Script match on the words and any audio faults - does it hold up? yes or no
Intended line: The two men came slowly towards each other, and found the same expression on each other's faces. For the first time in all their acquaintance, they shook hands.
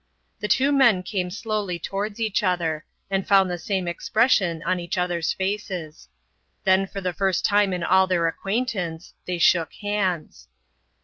no